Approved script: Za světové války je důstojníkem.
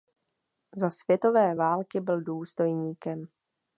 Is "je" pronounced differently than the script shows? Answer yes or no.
yes